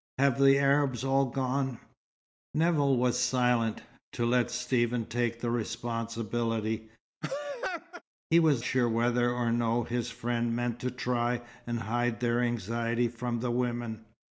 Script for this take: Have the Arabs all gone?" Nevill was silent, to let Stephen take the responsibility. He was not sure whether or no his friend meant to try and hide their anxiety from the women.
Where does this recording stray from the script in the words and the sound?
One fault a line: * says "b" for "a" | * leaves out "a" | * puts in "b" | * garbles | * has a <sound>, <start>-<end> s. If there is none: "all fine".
* has a laugh, 7.2-8.0 s
* leaves out "not"